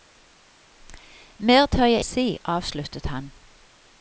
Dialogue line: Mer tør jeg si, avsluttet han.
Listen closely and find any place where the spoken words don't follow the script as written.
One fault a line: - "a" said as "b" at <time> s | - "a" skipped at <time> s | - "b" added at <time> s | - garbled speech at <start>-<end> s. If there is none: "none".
none